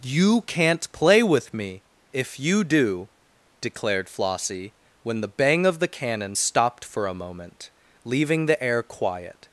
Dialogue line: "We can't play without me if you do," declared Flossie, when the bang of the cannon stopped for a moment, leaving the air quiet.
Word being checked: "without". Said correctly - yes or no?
no